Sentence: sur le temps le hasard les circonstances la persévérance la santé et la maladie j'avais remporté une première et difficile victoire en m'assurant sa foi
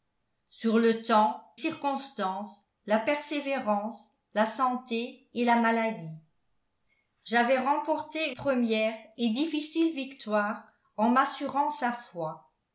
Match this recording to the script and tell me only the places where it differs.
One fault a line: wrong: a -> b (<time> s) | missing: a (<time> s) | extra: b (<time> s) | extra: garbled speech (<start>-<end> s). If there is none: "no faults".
missing: le hasard les (1.4 s)
missing: une (8.4 s)